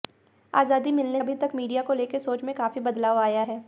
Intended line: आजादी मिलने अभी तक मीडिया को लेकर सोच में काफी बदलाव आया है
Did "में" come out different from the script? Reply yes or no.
no